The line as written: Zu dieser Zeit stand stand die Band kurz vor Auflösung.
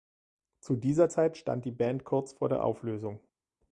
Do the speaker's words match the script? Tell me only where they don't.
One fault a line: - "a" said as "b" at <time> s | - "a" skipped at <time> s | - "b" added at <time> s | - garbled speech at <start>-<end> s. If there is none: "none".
- "stand" skipped at 1.7 s
- "der" added at 2.5 s